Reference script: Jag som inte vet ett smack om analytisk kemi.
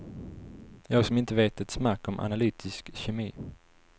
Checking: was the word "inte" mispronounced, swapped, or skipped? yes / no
no